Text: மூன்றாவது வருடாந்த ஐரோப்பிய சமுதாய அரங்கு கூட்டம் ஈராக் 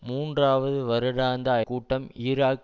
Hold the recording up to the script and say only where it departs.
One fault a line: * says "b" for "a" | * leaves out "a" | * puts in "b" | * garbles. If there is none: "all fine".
* leaves out "ஐரோப்பிய சமுதாய அரங்கு"